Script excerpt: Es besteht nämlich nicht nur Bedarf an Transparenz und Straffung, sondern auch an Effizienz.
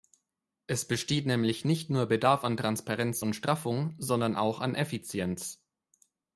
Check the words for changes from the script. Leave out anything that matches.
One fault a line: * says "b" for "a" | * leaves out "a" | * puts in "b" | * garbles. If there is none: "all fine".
all fine